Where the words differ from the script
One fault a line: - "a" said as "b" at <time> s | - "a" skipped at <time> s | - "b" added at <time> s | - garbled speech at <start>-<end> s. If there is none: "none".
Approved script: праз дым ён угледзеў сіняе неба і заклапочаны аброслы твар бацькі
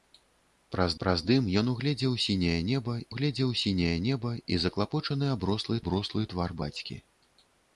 - "праз" added at 1.0 s
- "угледзеў сіняе неба" added at 3.1 s
- "аброслы" added at 5.8 s